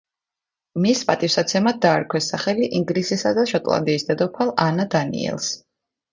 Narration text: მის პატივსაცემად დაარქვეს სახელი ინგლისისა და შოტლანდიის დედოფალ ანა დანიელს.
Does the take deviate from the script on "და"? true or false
false